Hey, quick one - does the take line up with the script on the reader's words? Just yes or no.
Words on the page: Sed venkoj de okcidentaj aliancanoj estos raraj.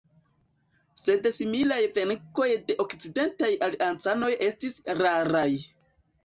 no